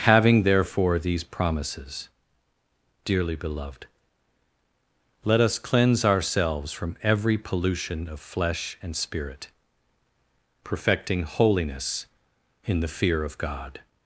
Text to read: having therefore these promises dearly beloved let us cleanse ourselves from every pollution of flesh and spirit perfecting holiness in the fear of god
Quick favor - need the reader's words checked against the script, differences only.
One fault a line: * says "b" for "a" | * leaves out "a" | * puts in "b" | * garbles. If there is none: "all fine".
all fine